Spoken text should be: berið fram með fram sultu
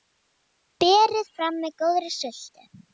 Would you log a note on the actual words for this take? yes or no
yes